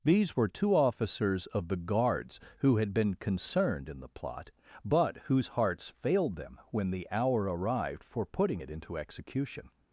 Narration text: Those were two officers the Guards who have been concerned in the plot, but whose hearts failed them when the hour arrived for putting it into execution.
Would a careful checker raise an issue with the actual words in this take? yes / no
yes